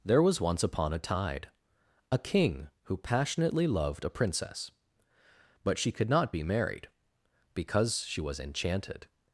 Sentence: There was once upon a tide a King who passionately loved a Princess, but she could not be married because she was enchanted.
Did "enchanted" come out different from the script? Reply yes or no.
no